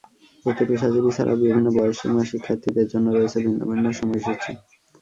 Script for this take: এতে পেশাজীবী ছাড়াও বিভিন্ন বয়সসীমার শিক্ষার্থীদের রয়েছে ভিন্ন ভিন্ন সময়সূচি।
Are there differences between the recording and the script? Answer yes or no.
yes